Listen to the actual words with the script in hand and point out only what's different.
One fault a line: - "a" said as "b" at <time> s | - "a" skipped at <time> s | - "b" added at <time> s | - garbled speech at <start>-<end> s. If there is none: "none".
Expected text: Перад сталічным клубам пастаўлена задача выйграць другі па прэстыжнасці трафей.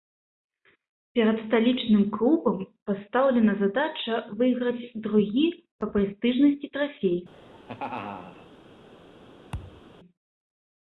none